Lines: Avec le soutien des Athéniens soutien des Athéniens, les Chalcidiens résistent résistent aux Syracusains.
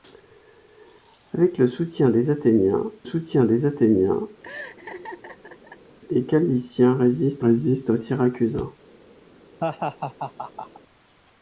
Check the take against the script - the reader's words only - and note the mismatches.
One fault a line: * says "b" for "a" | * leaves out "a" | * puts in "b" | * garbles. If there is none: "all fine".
all fine